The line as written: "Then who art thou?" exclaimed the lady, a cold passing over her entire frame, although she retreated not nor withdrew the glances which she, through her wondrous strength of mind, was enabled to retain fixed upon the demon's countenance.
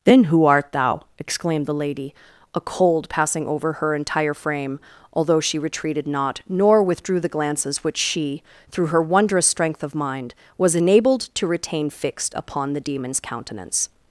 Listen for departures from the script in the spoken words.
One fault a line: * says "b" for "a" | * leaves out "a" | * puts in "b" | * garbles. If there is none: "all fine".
all fine